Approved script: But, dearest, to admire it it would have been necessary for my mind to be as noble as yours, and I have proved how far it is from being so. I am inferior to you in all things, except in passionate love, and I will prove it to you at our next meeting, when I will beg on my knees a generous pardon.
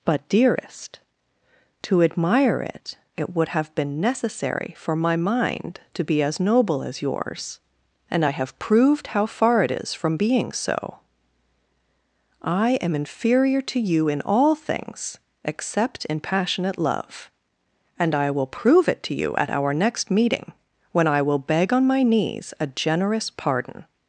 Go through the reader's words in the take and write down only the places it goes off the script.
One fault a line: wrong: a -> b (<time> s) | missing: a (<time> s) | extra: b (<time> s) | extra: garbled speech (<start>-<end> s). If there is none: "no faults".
no faults